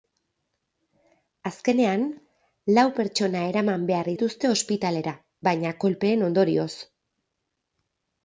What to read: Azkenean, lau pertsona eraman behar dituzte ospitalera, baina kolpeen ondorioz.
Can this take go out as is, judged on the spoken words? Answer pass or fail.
pass